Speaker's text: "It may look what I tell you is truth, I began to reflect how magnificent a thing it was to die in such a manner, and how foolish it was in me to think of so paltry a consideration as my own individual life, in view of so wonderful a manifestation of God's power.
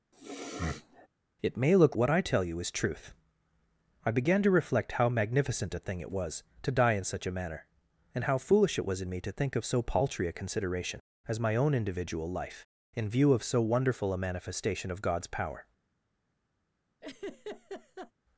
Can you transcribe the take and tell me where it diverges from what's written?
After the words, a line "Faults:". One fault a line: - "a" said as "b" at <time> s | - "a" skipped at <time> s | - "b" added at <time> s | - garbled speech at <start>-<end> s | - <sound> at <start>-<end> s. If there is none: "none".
"It may look what I tell you is truth, I began to reflect how magnificent a thing it was to die in such a manner, and how foolish it was in me to think of so paltry a consideration as my own individual life, in view of so wonderful a manifestation of God's power.
Faults:
- sniff at 0.1-1.1 s
- laugh at 17.0-18.1 s